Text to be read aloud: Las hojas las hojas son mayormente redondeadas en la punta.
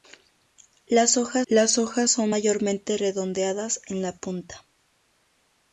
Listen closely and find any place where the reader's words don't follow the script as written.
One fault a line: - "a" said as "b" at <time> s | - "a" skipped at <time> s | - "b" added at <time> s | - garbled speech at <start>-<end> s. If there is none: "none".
none